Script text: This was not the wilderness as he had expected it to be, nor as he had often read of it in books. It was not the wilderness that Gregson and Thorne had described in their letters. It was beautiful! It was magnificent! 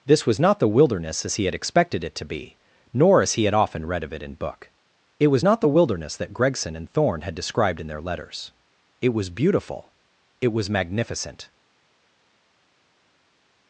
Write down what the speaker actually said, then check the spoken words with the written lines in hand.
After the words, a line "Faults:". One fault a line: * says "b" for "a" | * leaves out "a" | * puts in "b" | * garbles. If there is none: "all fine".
This was not the wilderness as he had expected it to be, nor as he had often read of it in book. It was not the wilderness that Gregson and Thorne had described in their letters. It was beautiful! It was magnificent!
Faults:
* says "book" for "books"